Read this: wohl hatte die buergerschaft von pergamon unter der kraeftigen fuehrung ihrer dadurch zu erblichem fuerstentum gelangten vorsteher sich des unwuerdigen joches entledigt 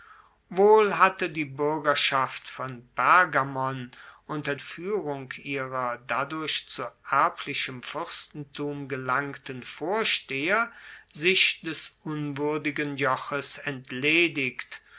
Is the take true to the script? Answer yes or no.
no